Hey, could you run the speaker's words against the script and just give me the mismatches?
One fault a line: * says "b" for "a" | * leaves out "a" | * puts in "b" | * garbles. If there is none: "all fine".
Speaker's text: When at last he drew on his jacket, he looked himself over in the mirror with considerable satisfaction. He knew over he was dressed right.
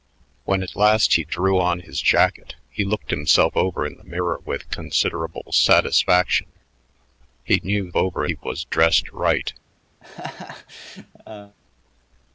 all fine